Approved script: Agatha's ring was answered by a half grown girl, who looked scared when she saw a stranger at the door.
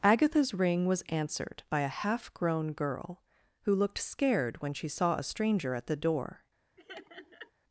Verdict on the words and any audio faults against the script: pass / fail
fail